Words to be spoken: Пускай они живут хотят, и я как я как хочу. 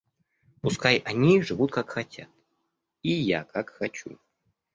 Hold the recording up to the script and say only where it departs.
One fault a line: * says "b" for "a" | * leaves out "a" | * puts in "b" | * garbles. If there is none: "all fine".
* puts in "как"
* leaves out "я как"